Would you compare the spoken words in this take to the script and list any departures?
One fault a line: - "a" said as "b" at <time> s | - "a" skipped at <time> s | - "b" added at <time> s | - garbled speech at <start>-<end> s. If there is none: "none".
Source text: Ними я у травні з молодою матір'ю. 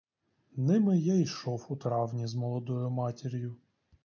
- "йшов" added at 1.1 s